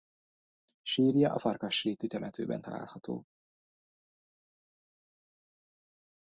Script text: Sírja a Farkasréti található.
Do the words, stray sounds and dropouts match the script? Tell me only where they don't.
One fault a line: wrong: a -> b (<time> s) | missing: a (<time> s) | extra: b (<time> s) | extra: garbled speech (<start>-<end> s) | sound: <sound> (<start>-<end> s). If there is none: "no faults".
extra: temetőben (2.1 s)